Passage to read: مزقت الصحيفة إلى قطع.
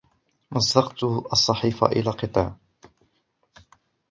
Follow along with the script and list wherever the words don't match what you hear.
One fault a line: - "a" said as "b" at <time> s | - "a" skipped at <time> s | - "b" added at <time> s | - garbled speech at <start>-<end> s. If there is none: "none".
none